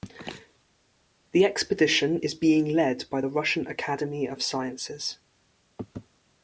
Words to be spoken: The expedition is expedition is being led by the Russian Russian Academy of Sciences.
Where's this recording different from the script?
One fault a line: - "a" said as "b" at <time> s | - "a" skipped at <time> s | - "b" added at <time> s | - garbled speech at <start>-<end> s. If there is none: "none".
- "expedition is" skipped at 2.3 s
- "Russian" skipped at 3.7 s